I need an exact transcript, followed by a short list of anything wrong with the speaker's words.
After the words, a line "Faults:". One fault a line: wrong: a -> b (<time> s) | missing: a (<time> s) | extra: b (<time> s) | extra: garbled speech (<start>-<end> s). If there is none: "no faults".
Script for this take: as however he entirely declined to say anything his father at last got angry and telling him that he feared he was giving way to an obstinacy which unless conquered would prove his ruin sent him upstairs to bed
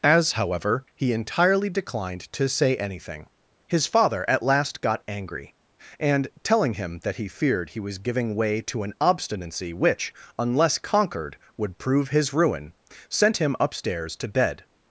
as however he entirely declined to say anything his father at last got angry and telling him that he feared he was giving way to an obstinacy which unless conquered would prove his ruin sent him upstairs to bed
Faults:
no faults